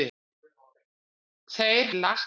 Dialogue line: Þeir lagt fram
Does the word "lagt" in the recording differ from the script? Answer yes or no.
no